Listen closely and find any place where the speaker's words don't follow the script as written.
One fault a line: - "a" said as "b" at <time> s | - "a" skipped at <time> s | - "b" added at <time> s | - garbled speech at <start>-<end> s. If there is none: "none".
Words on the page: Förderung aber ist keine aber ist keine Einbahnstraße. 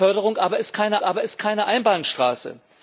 none